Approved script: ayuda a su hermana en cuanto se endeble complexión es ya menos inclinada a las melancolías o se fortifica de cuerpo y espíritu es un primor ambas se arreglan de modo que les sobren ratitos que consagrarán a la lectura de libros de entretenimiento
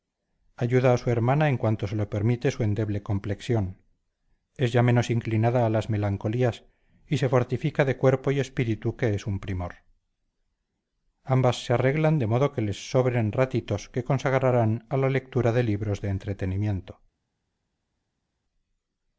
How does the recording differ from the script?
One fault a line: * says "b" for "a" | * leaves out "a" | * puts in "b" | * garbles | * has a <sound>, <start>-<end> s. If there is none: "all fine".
* puts in "lo permite su"
* says "y" for "o"
* puts in "que"